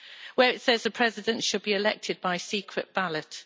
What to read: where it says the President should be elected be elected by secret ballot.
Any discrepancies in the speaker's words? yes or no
yes